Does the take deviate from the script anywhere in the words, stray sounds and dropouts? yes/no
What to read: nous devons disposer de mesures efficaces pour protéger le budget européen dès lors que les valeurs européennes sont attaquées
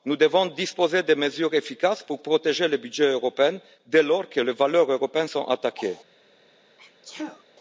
yes